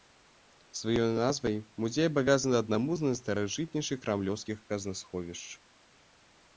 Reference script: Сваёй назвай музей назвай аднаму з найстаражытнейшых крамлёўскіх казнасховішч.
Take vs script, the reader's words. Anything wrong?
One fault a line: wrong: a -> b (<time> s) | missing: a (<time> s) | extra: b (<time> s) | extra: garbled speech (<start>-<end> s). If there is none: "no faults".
wrong: назвай -> абавязаны (2.1 s)